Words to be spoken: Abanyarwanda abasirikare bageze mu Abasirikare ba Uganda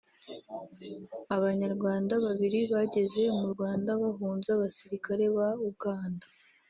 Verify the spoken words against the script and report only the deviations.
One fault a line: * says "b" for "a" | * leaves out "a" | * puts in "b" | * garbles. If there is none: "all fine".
* says "babiri" for "abasirikare"
* puts in "Rwanda bahunze"